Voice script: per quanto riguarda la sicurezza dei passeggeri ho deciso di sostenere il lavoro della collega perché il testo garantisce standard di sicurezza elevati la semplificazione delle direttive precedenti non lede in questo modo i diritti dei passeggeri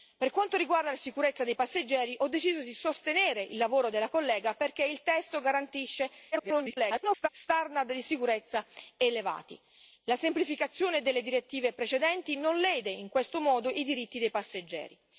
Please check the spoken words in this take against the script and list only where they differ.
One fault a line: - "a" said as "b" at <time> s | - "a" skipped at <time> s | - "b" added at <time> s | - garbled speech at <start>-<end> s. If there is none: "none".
- garbled speech at 6.3-7.3 s